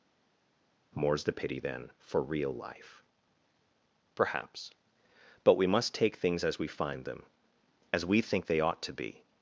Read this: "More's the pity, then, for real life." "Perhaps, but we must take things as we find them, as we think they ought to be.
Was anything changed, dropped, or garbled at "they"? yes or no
no